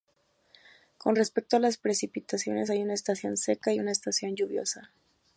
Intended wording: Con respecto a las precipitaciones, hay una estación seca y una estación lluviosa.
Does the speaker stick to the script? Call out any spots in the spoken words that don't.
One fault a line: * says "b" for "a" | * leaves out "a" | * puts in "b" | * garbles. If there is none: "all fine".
all fine